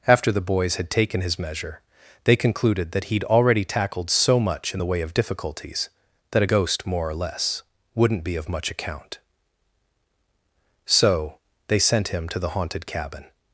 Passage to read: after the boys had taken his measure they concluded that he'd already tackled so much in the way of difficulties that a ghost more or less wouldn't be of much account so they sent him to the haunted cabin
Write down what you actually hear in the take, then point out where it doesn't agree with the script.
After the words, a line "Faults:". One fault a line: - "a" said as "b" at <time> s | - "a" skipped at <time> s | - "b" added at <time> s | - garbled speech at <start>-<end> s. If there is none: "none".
after the boys had taken his measure they concluded that he'd already tackled so much in the way of difficulties that a ghost more or less wouldn't be of much account so they sent him to the haunted cabin
Faults:
none